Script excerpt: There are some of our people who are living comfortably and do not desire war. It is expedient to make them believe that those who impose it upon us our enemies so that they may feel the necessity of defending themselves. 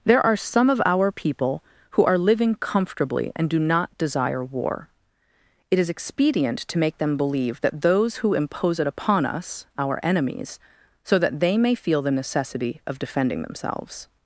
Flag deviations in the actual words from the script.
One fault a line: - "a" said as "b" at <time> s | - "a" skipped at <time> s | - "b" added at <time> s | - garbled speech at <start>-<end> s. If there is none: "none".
none